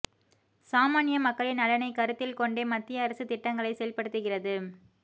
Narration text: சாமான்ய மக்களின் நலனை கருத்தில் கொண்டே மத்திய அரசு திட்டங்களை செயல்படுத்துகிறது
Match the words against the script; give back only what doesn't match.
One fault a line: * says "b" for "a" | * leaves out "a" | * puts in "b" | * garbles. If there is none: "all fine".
all fine